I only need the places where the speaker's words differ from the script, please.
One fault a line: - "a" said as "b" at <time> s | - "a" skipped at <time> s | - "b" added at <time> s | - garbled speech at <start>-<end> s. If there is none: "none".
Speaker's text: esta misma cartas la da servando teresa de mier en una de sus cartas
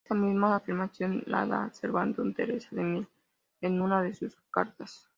- "cartas" said as "afirmación" at 0.5 s